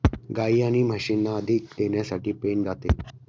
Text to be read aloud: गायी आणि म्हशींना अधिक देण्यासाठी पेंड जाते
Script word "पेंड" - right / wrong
right